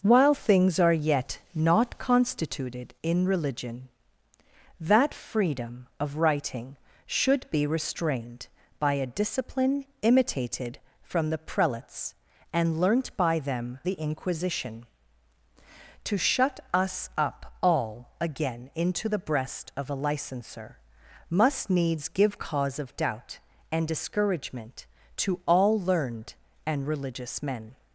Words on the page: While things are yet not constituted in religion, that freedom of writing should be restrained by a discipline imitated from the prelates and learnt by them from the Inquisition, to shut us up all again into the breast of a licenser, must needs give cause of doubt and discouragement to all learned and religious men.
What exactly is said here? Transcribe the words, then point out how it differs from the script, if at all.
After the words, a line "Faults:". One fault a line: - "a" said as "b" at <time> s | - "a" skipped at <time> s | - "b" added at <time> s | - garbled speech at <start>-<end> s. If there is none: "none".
While things are yet not constituted in religion, that freedom of writing should be restrained by a discipline imitated from the prelates and learnt by them the Inquisition, to shut us up all again into the breast of a licenser, must needs give cause of doubt and discouragement to all learned and religious men.
Faults:
- "from" skipped at 13.8 s